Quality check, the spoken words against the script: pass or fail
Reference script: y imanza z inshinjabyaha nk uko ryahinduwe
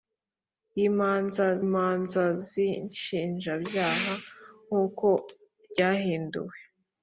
fail